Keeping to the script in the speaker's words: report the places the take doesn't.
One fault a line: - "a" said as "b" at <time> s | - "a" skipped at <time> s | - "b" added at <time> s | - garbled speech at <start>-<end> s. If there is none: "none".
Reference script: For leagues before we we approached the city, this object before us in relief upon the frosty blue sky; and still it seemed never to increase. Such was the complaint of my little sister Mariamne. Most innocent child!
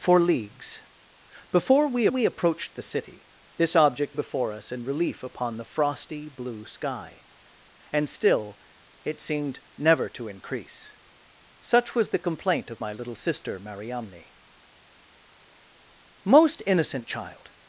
none